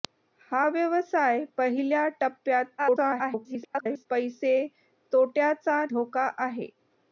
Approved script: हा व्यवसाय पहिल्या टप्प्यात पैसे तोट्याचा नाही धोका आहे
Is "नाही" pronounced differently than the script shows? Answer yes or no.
yes